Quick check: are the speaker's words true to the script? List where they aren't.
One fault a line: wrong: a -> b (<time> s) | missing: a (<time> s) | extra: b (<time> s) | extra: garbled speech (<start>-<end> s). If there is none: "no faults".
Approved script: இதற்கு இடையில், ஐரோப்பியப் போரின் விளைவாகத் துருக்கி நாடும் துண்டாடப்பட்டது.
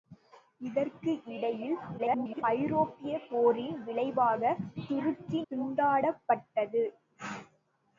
extra: garbled speech (2.0-2.4 s)
missing: நாடும் (5.4 s)